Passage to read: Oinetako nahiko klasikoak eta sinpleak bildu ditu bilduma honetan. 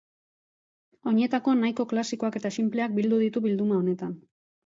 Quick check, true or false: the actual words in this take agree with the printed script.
true